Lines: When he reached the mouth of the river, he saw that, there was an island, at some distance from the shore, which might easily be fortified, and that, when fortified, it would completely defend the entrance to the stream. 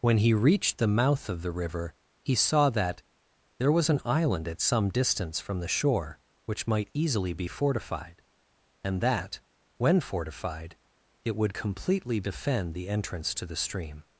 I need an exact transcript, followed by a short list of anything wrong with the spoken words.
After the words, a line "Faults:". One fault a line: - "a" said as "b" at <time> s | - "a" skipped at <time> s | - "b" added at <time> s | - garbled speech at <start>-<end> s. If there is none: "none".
When he reached the mouth of the river, he saw that, there was an island, at some distance from the shore, which might easily be fortified, and that, when fortified, it would completely defend the entrance to the stream.
Faults:
none